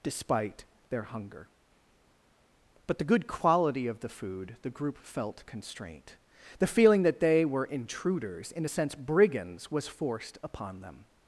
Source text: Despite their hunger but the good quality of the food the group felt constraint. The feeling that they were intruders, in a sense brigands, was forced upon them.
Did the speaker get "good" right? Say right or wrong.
right